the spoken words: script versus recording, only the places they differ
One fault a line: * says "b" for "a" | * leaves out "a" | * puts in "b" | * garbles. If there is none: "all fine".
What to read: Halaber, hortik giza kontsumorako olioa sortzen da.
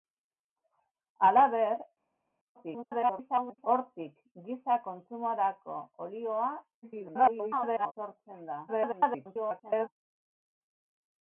* garbles
* garbles
* garbles